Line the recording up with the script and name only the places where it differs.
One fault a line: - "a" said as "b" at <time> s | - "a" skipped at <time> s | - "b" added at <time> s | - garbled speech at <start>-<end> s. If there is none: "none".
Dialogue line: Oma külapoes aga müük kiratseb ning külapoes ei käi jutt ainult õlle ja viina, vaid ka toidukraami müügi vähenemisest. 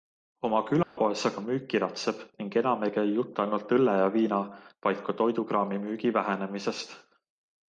- "külapoes" said as "enam" at 2.6 s